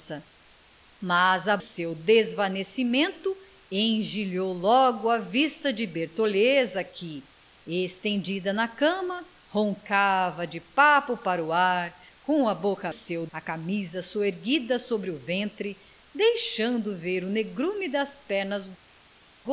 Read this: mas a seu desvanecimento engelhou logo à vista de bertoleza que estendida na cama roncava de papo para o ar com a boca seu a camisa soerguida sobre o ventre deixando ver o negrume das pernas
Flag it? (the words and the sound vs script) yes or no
no